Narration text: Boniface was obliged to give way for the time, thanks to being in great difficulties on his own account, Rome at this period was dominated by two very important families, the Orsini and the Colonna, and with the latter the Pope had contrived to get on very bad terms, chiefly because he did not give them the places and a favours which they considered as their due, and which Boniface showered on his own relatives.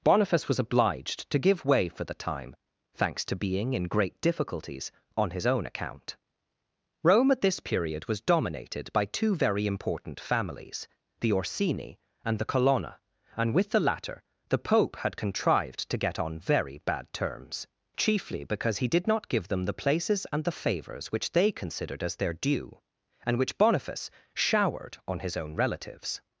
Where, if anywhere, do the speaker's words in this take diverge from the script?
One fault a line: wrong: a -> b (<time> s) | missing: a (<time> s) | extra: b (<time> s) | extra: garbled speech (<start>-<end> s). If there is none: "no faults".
wrong: a -> the (20.4 s)